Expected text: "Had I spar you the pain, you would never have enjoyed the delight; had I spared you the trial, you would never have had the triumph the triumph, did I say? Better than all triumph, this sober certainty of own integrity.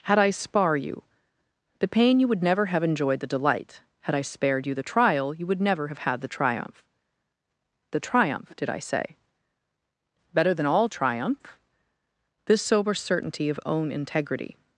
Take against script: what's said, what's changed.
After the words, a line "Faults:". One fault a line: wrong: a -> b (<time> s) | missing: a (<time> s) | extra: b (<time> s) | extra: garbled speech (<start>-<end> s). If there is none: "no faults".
"Had I spar you the pain, you would never have enjoyed the delight; had I spared you the trial, you would never have had the triumph the triumph, did I say? Better than all triumph, this sober certainty of own integrity.
Faults:
no faults